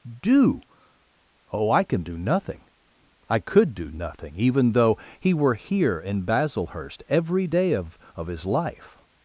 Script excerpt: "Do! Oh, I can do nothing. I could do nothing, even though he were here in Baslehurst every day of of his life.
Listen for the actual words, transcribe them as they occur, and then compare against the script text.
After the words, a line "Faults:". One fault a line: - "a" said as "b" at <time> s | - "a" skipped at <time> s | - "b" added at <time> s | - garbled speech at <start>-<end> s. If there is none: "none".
"Do! Oh, I can do nothing. I could do nothing, even though he were here in Baslehurst every day of of his life.
Faults:
none